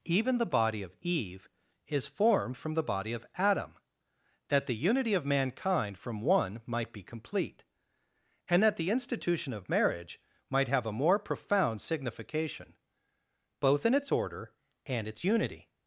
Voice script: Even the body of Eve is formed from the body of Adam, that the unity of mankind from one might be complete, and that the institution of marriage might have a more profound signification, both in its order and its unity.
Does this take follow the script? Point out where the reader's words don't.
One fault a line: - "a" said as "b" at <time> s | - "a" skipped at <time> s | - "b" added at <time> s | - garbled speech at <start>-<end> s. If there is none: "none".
none